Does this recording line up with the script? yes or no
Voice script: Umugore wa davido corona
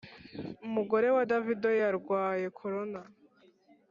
no